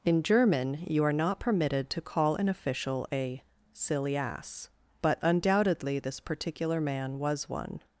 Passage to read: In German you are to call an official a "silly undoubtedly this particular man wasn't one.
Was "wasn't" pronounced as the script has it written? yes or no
no